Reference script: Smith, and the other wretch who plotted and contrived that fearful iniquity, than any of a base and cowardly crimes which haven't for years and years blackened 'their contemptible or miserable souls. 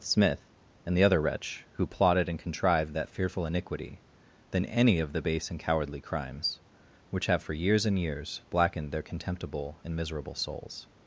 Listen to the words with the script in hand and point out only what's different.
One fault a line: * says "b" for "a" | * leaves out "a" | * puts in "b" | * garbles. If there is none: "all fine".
* says "the" for "a"
* says "have" for "haven't"
* says "and" for "or"